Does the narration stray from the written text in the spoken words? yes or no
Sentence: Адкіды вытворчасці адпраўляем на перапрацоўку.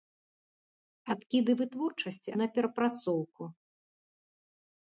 yes